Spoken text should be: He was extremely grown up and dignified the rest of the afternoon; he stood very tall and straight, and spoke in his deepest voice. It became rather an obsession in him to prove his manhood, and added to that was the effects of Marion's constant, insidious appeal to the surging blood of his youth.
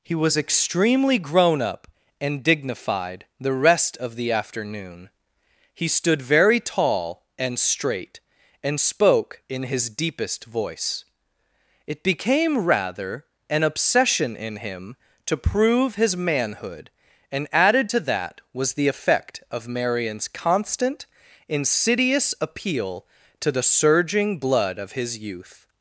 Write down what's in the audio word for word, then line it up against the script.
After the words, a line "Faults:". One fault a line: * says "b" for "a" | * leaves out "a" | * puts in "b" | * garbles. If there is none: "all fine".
He was extremely grown up and dignified the rest of the afternoon; he stood very tall and straight, and spoke in his deepest voice. It became rather an obsession in him to prove his manhood, and added to that was the effect of Marion's constant, insidious appeal to the surging blood of his youth.
Faults:
* says "effect" for "effects"